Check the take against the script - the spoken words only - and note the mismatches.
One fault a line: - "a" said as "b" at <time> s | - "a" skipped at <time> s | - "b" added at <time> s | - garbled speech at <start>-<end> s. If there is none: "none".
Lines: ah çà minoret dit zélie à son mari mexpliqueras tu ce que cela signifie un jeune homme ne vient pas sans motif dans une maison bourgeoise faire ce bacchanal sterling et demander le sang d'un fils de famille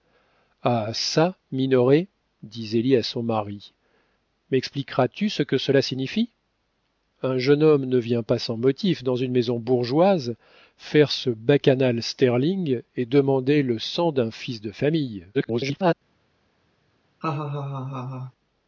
- garbled speech at 15.3-15.9 s